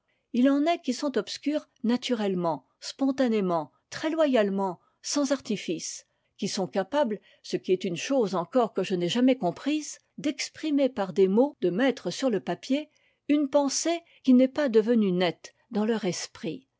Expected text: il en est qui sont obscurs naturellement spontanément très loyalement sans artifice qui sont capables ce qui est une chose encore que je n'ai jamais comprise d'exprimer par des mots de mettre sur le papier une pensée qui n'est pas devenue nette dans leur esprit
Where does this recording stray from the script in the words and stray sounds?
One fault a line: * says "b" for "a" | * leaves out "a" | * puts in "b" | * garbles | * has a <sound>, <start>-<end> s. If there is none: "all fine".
all fine